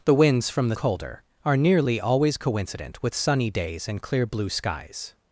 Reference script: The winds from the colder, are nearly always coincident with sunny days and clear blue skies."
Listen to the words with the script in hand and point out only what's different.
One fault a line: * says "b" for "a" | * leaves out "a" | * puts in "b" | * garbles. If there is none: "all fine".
all fine